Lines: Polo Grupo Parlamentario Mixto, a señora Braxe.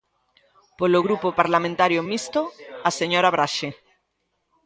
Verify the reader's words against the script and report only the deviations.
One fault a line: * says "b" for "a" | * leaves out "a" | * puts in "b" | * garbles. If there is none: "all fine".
all fine